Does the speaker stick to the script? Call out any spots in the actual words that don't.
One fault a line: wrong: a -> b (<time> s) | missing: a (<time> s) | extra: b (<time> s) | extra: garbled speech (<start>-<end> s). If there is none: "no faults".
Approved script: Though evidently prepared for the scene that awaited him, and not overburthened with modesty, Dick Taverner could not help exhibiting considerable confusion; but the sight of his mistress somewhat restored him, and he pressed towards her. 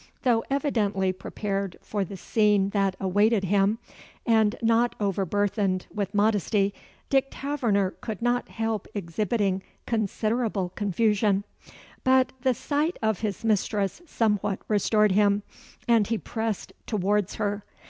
no faults